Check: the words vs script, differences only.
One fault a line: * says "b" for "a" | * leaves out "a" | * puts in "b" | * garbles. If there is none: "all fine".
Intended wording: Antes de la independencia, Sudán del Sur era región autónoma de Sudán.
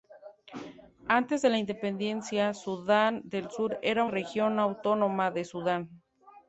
all fine